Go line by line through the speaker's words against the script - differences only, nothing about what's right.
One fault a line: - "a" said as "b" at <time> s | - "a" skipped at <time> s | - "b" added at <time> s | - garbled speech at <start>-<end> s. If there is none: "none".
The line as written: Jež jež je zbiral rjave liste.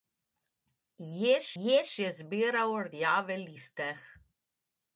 none